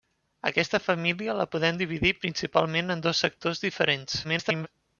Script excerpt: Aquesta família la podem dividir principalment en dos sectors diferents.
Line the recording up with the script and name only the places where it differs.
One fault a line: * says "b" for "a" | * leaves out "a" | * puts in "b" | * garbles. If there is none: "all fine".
* garbles